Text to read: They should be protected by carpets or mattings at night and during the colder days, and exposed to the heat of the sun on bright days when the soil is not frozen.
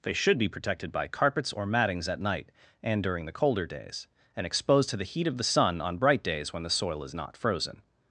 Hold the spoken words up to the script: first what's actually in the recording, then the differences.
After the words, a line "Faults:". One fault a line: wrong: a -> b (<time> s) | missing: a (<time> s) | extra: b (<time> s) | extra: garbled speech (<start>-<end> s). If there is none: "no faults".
They should be protected by carpets or mattings at night and during the colder days, and exposed to the heat of the sun on bright days when the soil is not frozen.
Faults:
no faults